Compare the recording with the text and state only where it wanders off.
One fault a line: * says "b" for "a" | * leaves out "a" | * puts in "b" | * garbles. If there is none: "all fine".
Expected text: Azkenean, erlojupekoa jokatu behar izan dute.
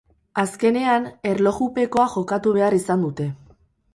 all fine